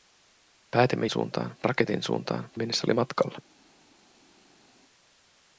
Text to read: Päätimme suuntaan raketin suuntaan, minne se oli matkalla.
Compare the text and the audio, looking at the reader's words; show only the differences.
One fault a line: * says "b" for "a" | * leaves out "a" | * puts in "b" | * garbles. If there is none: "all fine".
all fine